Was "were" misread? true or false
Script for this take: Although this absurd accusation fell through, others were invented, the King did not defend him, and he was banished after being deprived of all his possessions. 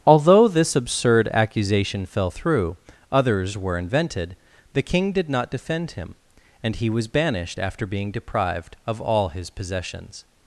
false